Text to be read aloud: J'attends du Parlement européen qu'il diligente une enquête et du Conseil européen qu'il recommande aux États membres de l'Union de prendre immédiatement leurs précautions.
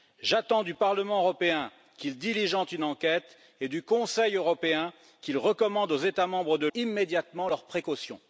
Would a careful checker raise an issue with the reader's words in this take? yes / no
yes